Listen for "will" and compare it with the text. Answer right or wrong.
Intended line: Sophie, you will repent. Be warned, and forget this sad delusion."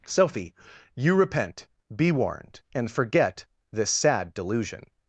wrong